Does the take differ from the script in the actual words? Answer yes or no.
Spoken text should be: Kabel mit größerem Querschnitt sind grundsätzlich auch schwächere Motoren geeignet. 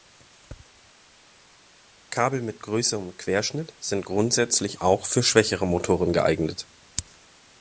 yes